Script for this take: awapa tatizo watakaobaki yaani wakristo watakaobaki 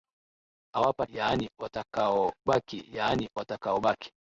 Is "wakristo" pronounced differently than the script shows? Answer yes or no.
yes